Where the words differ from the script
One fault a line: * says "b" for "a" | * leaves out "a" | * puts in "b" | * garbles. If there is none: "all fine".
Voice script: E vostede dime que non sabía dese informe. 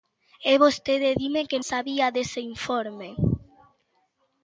* leaves out "non"